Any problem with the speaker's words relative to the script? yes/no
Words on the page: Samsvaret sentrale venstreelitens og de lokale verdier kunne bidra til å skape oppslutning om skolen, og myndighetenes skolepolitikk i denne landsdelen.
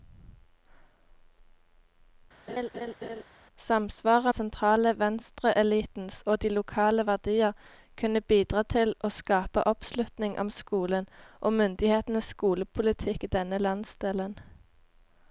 no